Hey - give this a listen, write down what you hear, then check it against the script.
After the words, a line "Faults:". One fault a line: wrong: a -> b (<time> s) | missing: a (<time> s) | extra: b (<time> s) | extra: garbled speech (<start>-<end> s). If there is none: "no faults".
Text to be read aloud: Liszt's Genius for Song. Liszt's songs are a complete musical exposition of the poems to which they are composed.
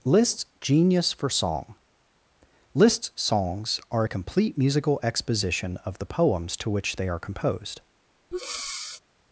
Liszt's Genius for Song. Liszt's songs are a complete musical exposition of the poems to which they are composed.
Faults:
no faults